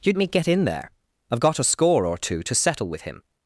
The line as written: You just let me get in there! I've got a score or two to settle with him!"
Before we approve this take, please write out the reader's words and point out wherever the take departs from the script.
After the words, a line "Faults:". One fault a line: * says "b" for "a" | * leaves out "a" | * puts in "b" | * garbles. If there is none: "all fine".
You me get in there! I've got a score or two to settle with him!"
Faults:
* leaves out "just let"